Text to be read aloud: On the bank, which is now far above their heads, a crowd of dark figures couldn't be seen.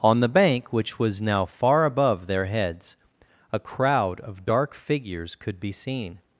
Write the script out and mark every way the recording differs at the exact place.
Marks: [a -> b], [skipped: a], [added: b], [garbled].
On the bank, which [is -> was] now far above their heads, a crowd of dark figures [couldn't -> could] be seen.